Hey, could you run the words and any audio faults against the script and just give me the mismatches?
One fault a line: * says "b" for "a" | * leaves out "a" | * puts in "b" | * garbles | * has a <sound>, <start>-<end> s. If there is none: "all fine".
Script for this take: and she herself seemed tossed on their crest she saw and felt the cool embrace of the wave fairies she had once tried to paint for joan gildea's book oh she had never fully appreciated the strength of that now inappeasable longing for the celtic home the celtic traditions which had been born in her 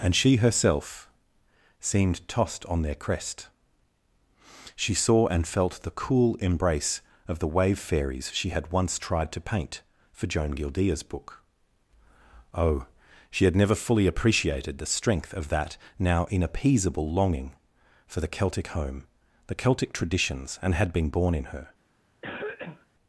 * says "and" for "which"
* has a cough, 22.2-22.9 s